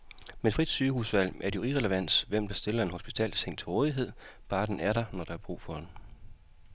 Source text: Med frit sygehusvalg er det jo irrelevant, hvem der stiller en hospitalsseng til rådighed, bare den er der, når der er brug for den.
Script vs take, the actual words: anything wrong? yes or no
no